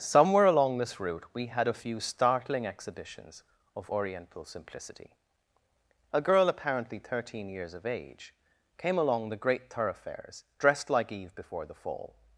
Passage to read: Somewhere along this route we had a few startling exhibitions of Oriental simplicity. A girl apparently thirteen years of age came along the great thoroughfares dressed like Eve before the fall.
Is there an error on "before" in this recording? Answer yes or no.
no